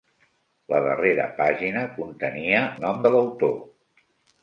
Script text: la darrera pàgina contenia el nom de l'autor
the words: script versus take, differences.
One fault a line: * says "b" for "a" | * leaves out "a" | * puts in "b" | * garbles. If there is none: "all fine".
* leaves out "el"